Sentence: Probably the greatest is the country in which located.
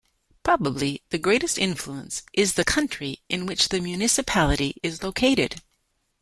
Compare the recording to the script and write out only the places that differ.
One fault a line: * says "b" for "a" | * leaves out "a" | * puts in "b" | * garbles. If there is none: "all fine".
* puts in "influence"
* puts in "the municipality is"